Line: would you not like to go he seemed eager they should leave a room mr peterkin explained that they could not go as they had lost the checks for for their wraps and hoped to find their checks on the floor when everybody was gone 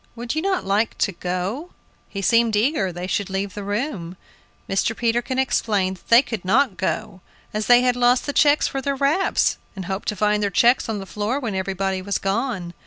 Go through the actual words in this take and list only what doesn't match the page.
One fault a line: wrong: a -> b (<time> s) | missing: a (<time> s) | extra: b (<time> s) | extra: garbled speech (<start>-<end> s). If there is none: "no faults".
wrong: a -> the (3.5 s)
missing: for (8.8 s)